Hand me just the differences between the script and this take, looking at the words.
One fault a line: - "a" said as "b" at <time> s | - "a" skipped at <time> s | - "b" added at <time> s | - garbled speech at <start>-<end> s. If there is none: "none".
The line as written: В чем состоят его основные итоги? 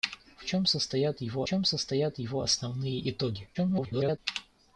- "чем состоят его" added at 1.4 s
- garbled speech at 3.5-4.2 s